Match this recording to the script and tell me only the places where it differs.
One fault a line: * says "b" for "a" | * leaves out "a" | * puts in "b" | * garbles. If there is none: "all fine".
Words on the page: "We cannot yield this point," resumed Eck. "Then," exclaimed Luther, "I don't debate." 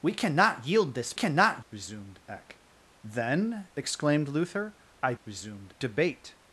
* says "cannot" for "point"
* says "resumed" for "don't"